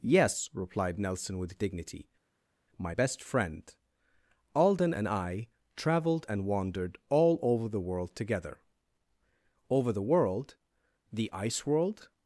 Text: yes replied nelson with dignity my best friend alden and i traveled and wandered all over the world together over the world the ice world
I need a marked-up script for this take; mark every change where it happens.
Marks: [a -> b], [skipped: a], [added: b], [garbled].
yes replied nelson with dignity my best friend alden and i traveled and wandered all over the world together over the world the ice world